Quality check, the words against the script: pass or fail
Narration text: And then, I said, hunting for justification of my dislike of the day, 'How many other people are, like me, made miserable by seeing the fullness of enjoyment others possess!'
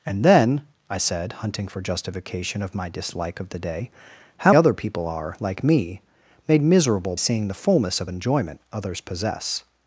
fail